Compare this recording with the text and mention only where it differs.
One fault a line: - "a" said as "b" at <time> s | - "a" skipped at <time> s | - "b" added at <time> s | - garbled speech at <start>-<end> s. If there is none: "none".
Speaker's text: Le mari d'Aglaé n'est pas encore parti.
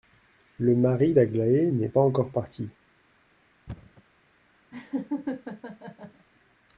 none